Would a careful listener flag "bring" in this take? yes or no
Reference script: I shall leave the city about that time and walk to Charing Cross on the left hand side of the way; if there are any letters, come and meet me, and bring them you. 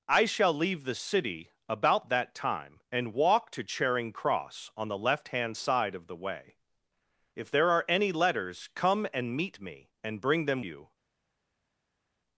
no